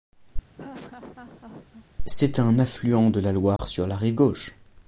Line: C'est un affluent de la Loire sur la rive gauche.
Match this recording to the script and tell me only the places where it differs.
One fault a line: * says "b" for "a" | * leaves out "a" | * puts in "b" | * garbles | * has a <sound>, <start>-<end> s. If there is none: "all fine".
* has a laugh, 0.6-1.9 s
* has a dropout, 3.6-3.6 s